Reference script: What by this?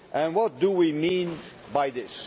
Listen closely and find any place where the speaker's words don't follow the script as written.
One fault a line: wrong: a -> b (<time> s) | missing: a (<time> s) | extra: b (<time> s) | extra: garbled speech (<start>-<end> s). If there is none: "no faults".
extra: do we mean (0.6 s)